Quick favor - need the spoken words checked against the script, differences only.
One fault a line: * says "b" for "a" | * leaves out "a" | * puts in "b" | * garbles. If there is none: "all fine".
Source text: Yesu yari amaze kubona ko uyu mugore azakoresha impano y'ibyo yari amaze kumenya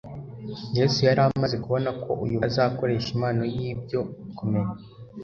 * leaves out "mugore"
* leaves out "yari amaze"